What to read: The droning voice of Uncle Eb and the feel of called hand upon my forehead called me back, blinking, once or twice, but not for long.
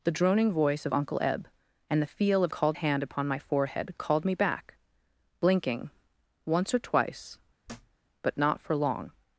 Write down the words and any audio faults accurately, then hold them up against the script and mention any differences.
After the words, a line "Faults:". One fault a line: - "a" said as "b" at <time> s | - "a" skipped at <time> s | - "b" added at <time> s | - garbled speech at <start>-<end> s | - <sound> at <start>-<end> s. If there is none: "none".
The droning voice of Uncle Eb and the feel of called hand upon my forehead called me back, blinking, once or twice, but not for long.
Faults:
- thud at 7.7-8.0 s